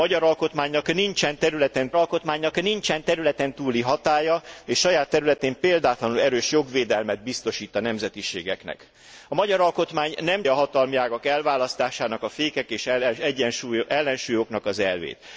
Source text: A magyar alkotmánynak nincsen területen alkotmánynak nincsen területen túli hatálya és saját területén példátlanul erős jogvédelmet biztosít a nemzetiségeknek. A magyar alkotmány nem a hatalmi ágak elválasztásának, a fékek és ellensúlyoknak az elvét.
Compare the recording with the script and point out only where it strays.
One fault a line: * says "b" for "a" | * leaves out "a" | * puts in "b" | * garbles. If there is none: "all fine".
all fine